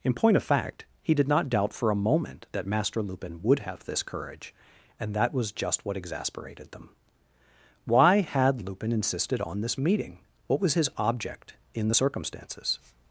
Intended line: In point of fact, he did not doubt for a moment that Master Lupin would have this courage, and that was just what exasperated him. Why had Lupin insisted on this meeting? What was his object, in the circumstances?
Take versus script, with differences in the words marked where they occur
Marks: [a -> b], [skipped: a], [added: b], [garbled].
In point of fact, he did not doubt for a moment that Master Lupin would have this courage, and that was just what exasperated [him. -> them] Why had Lupin insisted on this meeting? What was his object, in the circumstances?